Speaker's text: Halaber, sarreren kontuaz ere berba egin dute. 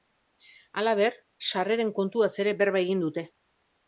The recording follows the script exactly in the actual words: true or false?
true